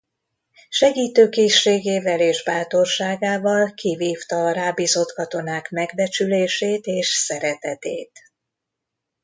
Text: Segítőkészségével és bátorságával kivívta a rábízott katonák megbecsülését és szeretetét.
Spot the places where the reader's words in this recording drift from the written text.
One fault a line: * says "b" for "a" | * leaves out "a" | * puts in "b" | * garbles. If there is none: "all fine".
all fine